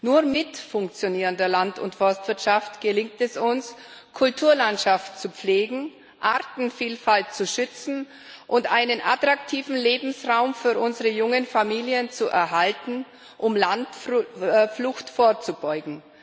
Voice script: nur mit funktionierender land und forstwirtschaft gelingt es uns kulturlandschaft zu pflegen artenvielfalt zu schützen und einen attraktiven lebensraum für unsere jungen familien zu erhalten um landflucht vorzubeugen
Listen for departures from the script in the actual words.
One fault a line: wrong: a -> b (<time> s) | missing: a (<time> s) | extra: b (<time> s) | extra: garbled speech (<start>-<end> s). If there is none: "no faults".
no faults